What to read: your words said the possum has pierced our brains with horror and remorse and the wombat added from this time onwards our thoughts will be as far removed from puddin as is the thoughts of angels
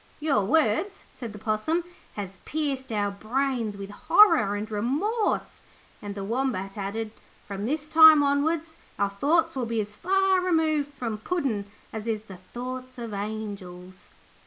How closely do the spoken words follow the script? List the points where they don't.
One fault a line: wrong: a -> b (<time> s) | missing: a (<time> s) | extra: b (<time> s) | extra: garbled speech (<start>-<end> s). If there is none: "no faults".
no faults